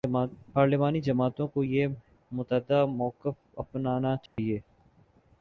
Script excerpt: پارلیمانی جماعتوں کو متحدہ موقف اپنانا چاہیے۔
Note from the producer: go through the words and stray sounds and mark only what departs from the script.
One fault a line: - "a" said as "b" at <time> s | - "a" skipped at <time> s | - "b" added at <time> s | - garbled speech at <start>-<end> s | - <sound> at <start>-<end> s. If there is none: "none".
- "یہ" added at 1.6 s
- dropout at 4.3-4.4 s